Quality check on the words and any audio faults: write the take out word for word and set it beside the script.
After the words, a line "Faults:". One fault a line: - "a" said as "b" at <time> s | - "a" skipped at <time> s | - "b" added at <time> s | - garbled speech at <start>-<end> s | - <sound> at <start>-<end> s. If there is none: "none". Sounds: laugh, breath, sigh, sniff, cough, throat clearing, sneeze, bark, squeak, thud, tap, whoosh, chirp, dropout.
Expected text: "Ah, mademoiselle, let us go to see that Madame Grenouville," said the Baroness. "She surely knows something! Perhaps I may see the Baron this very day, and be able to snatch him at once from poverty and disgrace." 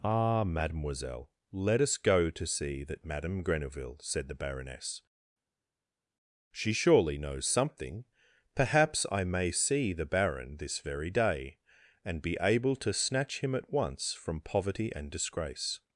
"Ah, mademoiselle, let us go to see that Madame Grenouville," said the Baroness. "She surely knows something! Perhaps I may see the Baron this very day, and be able to snatch him at once from poverty and disgrace."
Faults:
none